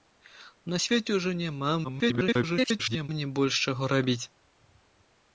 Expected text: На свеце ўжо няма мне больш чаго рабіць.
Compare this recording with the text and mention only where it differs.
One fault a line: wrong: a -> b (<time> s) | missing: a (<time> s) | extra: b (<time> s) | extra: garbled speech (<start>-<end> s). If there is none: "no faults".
extra: garbled speech (1.8-3.1 s)